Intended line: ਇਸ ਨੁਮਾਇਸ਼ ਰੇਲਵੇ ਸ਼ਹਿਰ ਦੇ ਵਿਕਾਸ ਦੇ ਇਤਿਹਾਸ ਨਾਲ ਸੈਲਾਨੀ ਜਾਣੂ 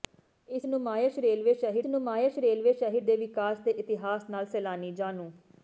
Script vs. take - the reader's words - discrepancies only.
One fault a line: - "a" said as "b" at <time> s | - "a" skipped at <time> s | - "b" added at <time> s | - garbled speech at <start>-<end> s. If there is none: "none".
- "ਨੁਮਾਇਸ਼ ਰੇਲਵੇ ਸ਼ਹਿਰ" added at 1.9 s